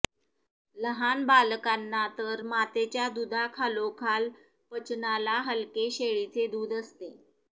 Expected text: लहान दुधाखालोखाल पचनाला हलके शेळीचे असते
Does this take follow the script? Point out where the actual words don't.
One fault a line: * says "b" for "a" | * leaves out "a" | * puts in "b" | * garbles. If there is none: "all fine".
* puts in "बालकांना तर मातेच्या"
* puts in "दूध"